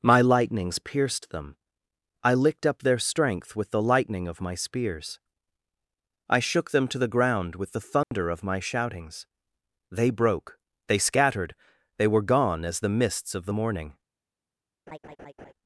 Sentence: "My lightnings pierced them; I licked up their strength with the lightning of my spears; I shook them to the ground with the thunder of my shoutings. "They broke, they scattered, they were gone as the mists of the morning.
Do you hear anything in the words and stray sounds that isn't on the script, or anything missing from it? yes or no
yes